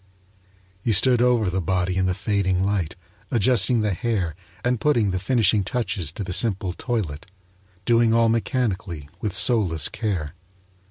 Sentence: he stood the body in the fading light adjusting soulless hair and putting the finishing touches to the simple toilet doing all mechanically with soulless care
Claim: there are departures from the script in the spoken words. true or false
true